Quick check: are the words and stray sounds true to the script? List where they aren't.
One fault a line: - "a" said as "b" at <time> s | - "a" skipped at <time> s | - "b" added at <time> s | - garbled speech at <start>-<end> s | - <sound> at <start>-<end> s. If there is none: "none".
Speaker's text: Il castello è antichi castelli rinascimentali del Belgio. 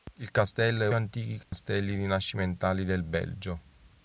- dropout at 1.4-1.5 s